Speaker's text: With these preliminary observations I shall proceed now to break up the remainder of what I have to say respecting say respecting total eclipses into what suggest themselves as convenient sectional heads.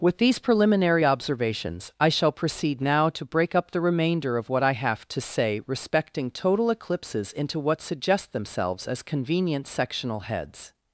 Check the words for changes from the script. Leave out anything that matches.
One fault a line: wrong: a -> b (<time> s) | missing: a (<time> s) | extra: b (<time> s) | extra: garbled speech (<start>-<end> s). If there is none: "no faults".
missing: say respecting (6.3 s)